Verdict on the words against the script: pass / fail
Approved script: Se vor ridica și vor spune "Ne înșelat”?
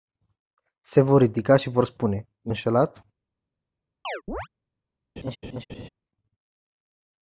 pass